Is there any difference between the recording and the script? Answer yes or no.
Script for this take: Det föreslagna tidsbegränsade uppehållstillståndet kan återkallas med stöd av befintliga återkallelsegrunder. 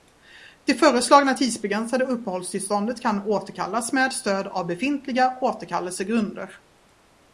no